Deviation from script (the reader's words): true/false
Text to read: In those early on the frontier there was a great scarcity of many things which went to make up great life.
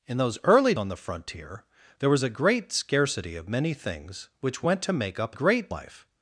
false